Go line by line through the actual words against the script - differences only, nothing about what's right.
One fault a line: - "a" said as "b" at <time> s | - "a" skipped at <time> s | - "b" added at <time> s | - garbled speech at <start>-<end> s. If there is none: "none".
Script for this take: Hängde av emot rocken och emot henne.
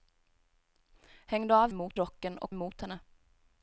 none